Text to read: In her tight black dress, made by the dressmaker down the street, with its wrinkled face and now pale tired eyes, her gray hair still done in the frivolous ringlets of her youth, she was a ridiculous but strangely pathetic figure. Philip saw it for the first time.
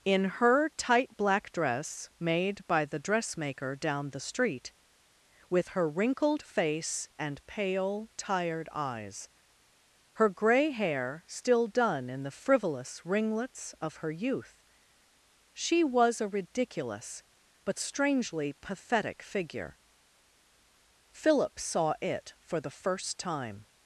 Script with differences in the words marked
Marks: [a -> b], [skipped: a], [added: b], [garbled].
In her tight black dress, made by the dressmaker down the street, with [its -> her] wrinkled face and [skipped: now] pale tired eyes, her gray hair still done in the frivolous ringlets of her youth, she was a ridiculous but strangely pathetic figure. Philip saw it for the first time.